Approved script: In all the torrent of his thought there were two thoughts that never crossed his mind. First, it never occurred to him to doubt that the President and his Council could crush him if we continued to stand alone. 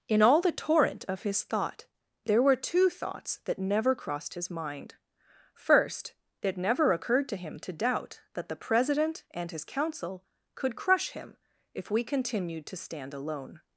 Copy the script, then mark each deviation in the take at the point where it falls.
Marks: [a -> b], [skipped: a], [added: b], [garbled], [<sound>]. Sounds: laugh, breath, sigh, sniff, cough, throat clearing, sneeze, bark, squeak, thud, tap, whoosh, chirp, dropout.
In all the torrent of his thought there were two thoughts that never crossed his mind. First, it never occurred to him to doubt that the President and his Council could crush him if we continued to stand alone.